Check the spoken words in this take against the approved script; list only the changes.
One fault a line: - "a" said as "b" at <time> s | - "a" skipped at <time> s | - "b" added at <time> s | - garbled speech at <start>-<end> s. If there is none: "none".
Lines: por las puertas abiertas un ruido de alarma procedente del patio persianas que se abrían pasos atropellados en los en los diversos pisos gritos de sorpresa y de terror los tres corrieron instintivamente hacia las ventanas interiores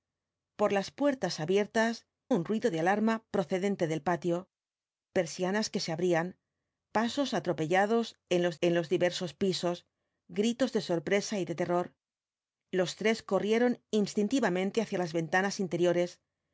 none